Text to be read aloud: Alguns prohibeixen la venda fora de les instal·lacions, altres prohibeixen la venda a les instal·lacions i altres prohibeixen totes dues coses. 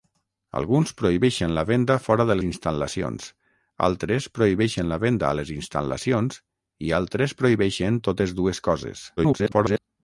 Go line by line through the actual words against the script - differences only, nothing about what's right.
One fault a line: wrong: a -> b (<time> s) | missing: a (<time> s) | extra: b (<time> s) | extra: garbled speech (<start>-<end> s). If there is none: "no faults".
missing: les (2.4 s)
extra: garbled speech (9.2-9.8 s)